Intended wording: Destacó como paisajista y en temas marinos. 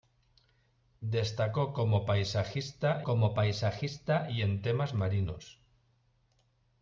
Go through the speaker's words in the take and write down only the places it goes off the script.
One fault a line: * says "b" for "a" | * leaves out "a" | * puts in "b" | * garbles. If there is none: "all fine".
* puts in "como paisajista"